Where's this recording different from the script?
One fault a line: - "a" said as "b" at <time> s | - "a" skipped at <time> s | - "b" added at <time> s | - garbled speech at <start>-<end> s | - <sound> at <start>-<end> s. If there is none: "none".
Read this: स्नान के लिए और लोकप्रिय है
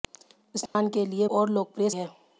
- dropout at 0.7-0.7 s